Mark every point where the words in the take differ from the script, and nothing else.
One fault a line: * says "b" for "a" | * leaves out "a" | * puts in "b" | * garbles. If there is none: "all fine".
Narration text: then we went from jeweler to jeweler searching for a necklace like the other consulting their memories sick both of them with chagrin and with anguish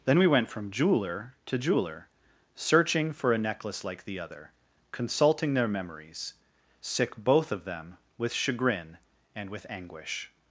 all fine